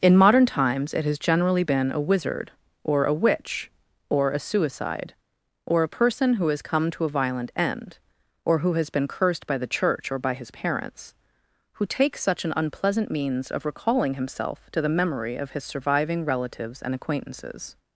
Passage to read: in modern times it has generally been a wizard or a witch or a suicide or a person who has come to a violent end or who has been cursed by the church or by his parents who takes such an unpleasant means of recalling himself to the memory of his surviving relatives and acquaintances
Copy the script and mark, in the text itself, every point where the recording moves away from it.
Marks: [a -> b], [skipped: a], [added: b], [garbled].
in modern times it has generally been a wizard or a witch or a suicide or a person who has come to a violent end or who has been cursed by the church or by his parents who takes such an unpleasant means of recalling himself to the memory of his surviving relatives and acquaintances